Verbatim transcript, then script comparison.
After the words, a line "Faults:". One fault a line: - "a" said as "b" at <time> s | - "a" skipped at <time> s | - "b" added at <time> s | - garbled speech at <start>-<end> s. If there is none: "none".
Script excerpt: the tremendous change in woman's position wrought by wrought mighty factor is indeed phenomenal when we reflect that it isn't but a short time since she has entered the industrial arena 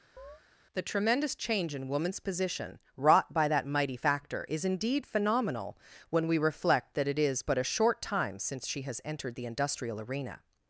the tremendous change in woman's position wrought by that mighty factor is indeed phenomenal when we reflect that it is but a short time since she has entered the industrial arena
Faults:
- "wrought" said as "that" at 3.5 s
- "isn't" said as "is" at 7.2 s